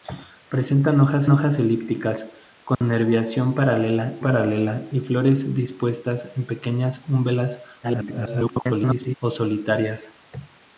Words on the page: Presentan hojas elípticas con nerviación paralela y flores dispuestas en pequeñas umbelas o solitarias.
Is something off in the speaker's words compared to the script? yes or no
yes